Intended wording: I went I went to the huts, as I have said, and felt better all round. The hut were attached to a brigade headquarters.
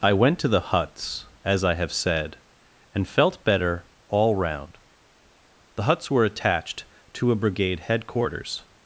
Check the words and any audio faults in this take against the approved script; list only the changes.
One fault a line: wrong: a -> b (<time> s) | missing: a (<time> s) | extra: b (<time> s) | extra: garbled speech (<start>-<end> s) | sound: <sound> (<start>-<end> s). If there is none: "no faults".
missing: I went (0.4 s)
wrong: hut -> huts (5.8 s)